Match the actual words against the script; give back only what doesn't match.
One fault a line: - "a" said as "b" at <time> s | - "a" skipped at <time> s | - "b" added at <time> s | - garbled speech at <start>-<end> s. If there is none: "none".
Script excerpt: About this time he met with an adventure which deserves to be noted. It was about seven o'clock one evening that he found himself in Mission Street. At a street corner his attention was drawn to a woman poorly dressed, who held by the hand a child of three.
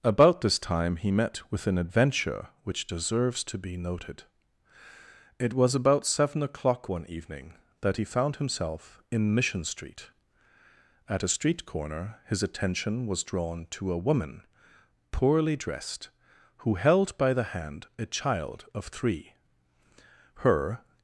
- "Her" added at 20.4 s